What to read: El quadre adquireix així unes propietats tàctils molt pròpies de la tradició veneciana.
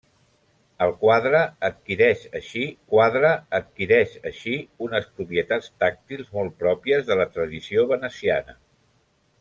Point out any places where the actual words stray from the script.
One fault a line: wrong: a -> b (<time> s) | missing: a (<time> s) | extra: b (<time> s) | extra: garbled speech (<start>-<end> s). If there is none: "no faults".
extra: quadre adquireix així (2.9 s)